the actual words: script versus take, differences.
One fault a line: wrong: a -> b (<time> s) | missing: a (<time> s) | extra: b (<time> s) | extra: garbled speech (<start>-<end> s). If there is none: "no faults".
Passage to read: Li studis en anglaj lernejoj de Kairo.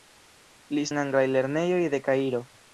missing: studis (0.8 s)